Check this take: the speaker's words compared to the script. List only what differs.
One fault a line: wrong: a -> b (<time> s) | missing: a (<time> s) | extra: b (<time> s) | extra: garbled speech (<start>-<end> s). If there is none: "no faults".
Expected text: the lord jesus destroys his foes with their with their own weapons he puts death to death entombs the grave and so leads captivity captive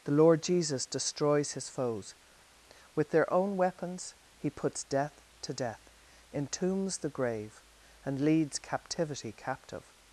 missing: with their (3.3 s)
missing: so (8.2 s)